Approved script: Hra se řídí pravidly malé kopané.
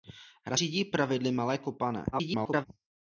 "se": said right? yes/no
no